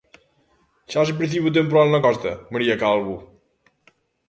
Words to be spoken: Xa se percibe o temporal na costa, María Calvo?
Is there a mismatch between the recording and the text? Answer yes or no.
no